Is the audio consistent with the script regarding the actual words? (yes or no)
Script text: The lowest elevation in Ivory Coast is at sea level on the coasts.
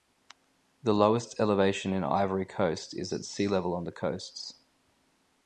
yes